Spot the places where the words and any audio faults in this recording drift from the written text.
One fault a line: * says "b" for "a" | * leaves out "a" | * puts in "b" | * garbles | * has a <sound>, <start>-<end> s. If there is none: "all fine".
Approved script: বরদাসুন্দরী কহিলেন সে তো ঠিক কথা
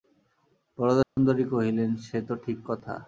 * has a dropout, 1.0-1.2 s